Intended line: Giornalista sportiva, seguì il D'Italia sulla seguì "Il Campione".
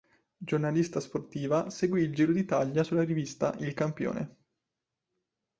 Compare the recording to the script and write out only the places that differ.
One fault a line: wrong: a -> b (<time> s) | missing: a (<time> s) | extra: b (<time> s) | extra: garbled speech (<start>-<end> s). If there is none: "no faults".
extra: Giro (2.1 s)
wrong: seguì -> rivista (3.0 s)